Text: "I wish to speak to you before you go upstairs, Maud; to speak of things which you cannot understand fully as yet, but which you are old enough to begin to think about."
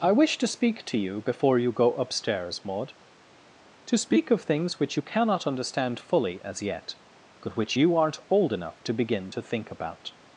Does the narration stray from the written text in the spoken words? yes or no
yes